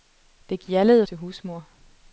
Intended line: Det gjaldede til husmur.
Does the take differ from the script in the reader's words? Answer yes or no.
no